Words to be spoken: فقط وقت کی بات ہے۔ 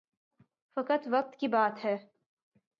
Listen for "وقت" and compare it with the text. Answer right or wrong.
right